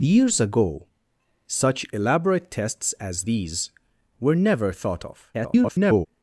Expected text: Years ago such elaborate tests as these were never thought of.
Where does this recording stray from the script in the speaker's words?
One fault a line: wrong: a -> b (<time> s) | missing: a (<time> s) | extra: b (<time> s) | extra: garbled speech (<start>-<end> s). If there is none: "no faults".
extra: garbled speech (5.3-6.1 s)